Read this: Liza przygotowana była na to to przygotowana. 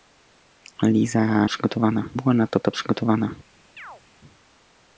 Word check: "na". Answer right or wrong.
right